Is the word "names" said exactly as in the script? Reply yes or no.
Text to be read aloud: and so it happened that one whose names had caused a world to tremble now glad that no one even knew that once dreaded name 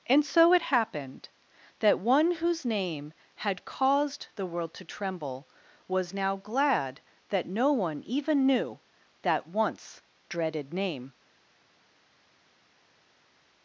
no